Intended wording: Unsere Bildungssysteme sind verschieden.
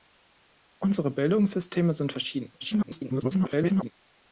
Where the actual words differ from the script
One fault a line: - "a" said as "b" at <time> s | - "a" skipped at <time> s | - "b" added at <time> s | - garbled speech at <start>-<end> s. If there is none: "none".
- garbled speech at 2.6-3.9 s